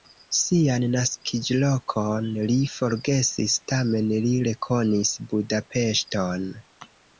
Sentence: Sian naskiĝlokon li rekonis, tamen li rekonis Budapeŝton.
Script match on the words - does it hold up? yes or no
no